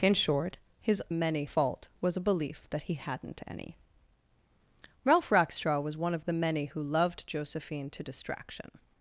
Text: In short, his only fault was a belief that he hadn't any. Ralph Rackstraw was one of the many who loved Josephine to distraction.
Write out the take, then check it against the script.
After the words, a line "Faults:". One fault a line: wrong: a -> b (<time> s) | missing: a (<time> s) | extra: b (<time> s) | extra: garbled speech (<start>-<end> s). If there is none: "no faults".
In short, his many fault was a belief that he hadn't any. Ralph Rackstraw was one of the many who loved Josephine to distraction.
Faults:
wrong: only -> many (1.1 s)